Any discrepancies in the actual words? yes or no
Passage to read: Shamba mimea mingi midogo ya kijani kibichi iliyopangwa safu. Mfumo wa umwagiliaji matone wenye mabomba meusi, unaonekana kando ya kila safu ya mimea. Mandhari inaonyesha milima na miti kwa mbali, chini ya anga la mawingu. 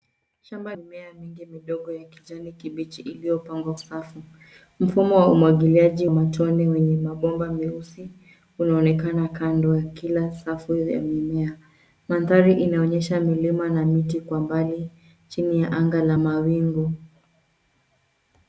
no